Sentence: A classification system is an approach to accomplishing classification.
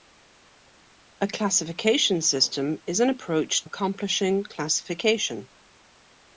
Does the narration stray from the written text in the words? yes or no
yes